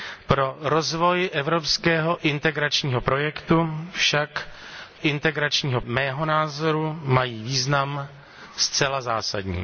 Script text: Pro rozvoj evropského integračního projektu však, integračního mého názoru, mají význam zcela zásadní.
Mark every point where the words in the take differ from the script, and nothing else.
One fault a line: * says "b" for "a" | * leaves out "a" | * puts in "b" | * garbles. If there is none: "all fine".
all fine